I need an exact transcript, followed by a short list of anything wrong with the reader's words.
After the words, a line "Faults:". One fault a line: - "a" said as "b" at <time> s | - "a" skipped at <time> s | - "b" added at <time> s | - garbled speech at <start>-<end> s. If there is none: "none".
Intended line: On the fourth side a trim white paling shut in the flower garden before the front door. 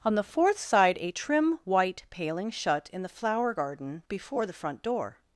On the fourth side a trim white paling shut in the flower garden before the front door.
Faults:
none